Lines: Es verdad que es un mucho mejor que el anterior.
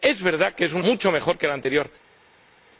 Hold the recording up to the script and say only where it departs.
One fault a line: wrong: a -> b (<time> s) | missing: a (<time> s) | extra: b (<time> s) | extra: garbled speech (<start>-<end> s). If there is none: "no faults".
no faults